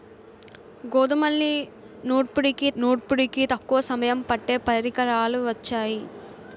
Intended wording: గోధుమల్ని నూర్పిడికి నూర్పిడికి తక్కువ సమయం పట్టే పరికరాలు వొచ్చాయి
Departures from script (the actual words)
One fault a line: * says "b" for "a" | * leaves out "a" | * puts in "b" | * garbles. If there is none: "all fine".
all fine